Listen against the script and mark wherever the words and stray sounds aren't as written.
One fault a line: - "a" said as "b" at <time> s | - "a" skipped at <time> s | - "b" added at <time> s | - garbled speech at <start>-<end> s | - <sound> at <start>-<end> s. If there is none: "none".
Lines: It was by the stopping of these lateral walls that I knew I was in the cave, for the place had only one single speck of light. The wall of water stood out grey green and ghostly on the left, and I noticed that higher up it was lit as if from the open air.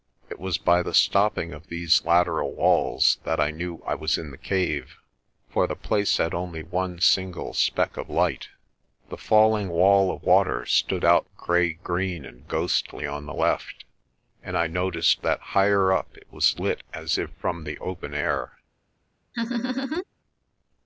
- "falling" added at 9.2 s
- laugh at 19.3-20.0 s